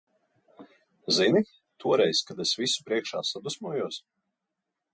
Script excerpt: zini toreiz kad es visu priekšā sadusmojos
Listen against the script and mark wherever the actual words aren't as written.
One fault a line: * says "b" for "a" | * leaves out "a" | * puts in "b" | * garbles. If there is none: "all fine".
all fine